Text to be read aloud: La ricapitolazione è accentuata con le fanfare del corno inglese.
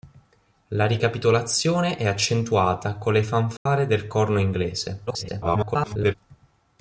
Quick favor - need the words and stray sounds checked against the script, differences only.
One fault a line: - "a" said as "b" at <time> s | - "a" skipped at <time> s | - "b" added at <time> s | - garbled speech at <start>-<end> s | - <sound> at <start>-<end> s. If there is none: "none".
- dropout at 3.6-3.7 s
- garbled speech at 5.1-6.1 s